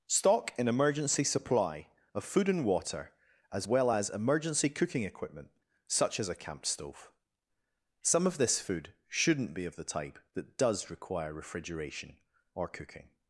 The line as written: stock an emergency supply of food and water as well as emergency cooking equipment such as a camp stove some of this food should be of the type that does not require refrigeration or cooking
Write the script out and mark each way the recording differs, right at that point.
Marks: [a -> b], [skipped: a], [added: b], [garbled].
stock an emergency supply of food and water as well as emergency cooking equipment such as a camp stove some of this food [should -> shouldn't] be of the type that does [skipped: not] require refrigeration or cooking